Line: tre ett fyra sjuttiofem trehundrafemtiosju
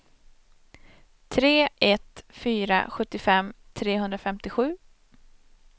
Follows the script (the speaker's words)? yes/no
yes